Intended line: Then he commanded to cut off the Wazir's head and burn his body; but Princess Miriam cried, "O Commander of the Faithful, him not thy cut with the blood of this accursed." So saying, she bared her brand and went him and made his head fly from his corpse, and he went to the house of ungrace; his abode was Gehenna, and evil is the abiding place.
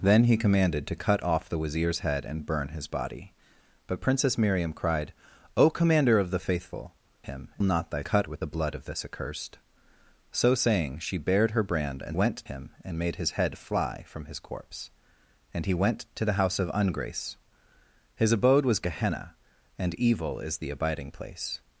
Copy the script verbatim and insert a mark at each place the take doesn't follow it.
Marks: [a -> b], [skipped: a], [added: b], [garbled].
Then he commanded to cut off the Wazir's head and burn his body; but Princess Miriam cried, "O Commander of the Faithful, him not thy cut with the blood of this accursed." So saying, she bared her brand and went him and made his head fly from his corpse, and he went to the house of ungrace; his abode was Gehenna, and evil is the abiding place.